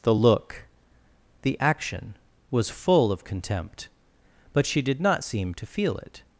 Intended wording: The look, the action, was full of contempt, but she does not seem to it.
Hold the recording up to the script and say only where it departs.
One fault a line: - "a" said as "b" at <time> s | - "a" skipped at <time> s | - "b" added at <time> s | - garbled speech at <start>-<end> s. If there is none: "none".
- "does" said as "did" at 4.8 s
- "feel" added at 5.7 s